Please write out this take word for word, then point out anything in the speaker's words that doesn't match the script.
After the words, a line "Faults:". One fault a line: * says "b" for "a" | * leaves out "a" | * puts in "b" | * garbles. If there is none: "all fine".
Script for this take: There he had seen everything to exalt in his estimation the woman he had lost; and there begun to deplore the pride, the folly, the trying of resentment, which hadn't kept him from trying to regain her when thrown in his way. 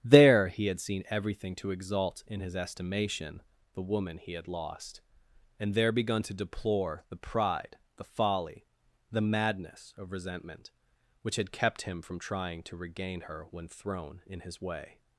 There he had seen everything to exalt in his estimation the woman he had lost; and there begun to deplore the pride, the folly, the madness of resentment, which had kept him from trying to regain her when thrown in his way.
Faults:
* says "madness" for "trying"
* says "had" for "hadn't"